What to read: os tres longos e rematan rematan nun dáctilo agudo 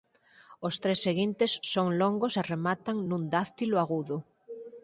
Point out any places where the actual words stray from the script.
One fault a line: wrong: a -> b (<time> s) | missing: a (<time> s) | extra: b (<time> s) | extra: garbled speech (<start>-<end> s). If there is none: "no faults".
extra: seguintes son (1.1 s)
missing: rematan (3.0 s)